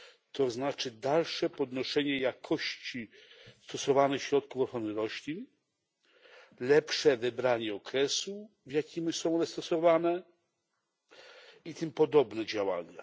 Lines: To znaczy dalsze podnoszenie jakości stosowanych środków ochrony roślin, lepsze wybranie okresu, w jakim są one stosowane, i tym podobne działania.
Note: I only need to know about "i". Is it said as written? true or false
true